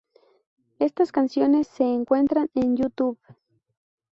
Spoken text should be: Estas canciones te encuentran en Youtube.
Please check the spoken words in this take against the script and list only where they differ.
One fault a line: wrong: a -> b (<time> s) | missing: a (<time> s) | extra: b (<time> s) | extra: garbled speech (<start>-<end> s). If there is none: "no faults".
wrong: te -> se (1.7 s)